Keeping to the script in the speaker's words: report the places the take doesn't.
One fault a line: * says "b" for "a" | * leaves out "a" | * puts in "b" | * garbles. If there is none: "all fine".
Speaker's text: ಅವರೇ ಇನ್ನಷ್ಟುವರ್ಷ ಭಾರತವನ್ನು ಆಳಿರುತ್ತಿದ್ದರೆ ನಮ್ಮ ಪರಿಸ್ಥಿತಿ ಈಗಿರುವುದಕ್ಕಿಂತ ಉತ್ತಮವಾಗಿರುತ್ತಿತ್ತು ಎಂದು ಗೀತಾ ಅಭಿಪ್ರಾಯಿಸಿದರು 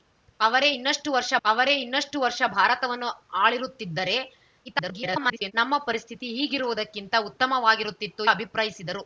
* puts in "ಅವರೇ ಇನ್ನಷ್ಟುವರ್ಷ"
* garbles
* leaves out "ಎಂದು ಗೀತಾ"